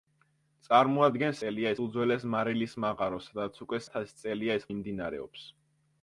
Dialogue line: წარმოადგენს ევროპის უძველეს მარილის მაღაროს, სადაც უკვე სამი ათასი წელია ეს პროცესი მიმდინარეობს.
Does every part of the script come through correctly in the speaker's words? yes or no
no